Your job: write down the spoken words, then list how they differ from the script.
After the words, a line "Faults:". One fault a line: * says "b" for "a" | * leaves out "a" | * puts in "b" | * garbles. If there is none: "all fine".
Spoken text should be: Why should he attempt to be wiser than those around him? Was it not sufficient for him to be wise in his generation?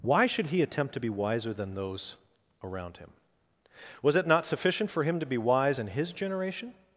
Why should he attempt to be wiser than those around him? Was it not sufficient for him to be wise in his generation?
Faults:
all fine